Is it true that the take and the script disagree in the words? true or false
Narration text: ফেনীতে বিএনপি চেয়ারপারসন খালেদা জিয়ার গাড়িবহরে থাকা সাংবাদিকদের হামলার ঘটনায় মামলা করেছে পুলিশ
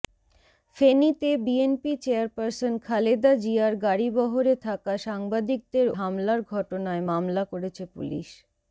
false